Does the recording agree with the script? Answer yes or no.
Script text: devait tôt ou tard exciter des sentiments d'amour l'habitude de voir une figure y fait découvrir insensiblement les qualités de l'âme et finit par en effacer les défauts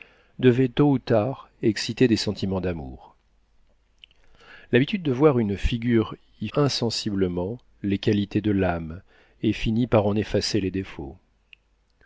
no